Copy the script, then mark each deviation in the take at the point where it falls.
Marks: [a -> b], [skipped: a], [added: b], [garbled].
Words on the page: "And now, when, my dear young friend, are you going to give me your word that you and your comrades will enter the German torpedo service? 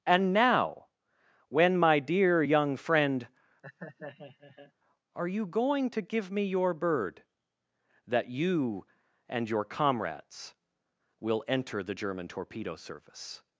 "And now, when, my dear young friend, are you going to give me your [word -> bird] that you and your comrades will enter the German torpedo service?